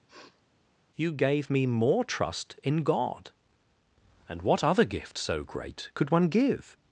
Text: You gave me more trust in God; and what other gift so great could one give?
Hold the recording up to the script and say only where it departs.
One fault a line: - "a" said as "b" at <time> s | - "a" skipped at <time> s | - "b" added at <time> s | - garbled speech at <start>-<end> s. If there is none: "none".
none